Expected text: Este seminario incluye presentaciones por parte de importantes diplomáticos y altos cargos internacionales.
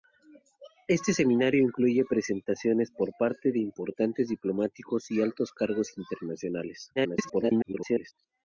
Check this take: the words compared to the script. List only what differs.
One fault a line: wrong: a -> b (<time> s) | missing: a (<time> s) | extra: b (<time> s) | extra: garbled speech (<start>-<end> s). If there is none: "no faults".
extra: garbled speech (7.0-8.1 s)